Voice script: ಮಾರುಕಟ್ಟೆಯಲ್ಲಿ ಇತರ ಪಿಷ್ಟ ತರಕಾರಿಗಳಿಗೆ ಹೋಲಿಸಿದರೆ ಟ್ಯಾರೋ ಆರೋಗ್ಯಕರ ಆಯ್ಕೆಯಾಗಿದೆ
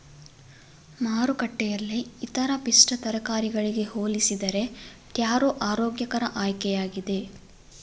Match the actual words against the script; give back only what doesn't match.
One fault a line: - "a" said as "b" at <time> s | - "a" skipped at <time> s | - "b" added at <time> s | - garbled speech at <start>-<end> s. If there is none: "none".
none